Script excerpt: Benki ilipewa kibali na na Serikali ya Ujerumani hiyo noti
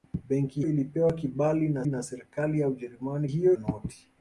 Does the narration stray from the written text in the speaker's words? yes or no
no